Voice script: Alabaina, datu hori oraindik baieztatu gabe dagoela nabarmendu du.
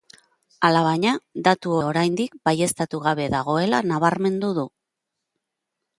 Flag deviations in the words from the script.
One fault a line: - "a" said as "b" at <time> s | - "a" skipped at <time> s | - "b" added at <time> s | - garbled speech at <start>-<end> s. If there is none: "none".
- "hori" skipped at 1.8 s